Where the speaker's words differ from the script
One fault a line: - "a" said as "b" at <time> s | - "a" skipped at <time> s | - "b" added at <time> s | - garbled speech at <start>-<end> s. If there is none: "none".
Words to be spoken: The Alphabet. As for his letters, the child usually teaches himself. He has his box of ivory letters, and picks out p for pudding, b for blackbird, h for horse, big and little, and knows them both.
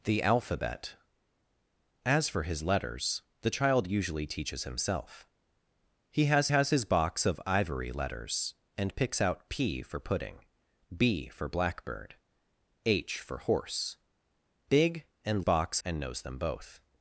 - "has" added at 6.5 s
- "little" said as "box" at 15.4 s